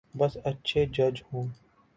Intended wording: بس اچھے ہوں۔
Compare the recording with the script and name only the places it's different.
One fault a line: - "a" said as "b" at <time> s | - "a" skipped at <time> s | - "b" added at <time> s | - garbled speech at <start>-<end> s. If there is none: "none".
- "جج" added at 0.9 s